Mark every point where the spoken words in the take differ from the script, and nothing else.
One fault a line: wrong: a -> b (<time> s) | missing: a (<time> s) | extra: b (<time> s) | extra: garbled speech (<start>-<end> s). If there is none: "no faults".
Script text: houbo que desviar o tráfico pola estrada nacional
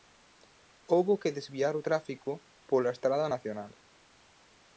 no faults